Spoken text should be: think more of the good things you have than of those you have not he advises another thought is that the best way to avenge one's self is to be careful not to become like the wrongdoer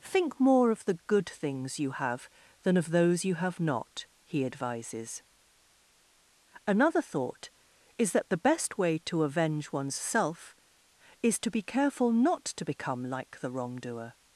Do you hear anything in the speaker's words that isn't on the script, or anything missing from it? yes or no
no